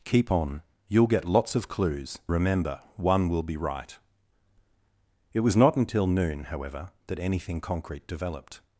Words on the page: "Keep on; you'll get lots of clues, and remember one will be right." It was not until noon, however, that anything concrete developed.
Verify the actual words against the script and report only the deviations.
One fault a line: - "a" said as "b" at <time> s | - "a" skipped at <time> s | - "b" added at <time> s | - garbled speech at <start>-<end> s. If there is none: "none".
- "and" skipped at 2.2 s